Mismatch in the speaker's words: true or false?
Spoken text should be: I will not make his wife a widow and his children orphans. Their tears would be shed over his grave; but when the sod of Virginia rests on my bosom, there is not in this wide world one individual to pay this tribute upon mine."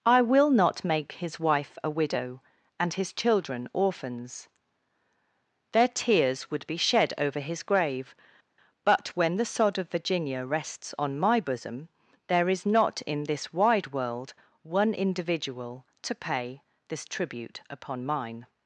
false